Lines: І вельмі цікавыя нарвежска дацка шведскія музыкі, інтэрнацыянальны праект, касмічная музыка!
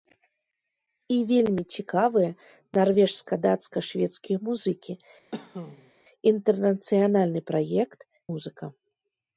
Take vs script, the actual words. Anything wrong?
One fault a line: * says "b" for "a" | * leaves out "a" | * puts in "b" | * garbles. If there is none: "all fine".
* leaves out "касмічная"